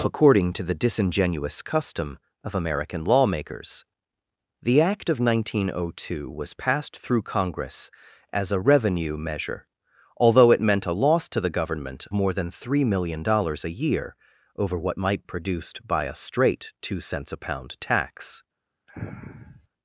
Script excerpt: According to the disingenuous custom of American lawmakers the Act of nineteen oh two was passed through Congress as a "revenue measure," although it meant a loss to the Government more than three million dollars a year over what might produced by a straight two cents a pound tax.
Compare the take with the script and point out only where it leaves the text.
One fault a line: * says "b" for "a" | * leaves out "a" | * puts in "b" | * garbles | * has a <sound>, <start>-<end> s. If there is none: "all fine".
* has a sniff, 18.9-19.7 s